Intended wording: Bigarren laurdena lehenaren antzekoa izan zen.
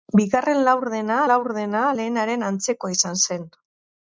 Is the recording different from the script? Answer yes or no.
yes